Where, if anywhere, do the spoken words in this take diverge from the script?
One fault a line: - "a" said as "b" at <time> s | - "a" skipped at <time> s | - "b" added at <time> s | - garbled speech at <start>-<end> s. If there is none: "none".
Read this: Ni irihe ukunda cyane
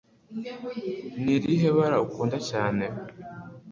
- "bara" added at 1.8 s